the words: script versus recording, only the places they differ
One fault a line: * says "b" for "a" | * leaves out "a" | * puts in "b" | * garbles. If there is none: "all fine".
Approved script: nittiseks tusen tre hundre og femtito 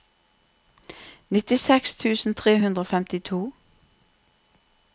all fine